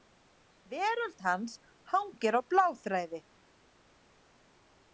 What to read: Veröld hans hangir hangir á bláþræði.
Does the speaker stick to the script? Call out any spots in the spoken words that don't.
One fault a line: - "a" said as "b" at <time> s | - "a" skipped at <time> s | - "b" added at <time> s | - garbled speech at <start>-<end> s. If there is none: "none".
- "hangir" skipped at 2.4 s